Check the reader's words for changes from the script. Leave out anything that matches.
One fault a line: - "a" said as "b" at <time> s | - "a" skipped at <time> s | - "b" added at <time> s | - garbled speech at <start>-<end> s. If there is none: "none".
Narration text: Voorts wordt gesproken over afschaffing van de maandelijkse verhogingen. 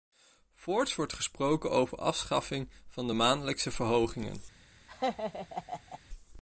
none